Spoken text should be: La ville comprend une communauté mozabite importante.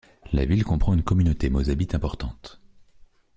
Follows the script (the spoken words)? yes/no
yes